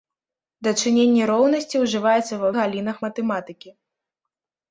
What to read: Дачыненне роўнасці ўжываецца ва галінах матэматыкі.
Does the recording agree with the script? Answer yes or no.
yes